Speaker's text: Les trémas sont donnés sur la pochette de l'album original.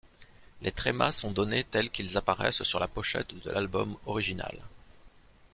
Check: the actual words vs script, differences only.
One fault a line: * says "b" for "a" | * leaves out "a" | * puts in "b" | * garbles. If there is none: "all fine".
* puts in "tels qu'ils apparaissent"